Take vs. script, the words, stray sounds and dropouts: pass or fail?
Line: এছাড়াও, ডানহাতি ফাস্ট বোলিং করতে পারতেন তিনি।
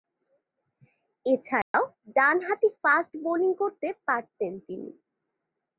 fail